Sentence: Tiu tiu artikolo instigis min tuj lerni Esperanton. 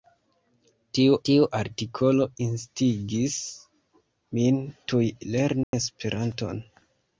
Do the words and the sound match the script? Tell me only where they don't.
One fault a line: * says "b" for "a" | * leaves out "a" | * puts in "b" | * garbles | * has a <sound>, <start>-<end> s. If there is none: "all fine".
* has a dropout, 5.6-5.7 s